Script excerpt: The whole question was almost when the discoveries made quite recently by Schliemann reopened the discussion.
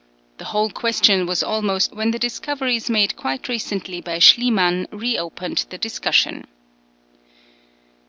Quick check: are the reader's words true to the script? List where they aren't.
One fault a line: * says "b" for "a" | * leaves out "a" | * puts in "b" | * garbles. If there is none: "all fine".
all fine